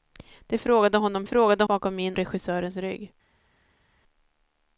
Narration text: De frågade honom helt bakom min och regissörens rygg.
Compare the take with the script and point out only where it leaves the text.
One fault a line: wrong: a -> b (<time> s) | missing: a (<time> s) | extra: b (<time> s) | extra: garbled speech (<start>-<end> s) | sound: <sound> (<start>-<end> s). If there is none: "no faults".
wrong: helt -> frågade (1.2 s)
missing: och (2.2 s)